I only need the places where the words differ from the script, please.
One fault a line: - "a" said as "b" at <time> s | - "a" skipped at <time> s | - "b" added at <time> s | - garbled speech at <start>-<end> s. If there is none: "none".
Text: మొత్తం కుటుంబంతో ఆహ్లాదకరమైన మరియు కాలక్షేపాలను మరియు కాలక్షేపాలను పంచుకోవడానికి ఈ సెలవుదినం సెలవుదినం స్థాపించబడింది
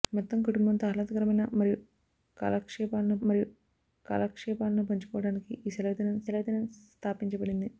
none